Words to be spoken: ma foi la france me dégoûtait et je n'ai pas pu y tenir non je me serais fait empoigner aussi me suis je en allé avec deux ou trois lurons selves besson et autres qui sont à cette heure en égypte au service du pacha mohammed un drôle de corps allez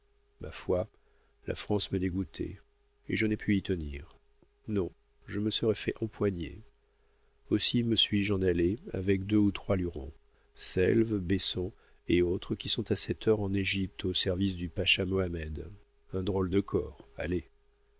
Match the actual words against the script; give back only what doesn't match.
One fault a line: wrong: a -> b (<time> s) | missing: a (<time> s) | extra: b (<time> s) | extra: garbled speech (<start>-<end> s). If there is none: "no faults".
missing: pas (3.4 s)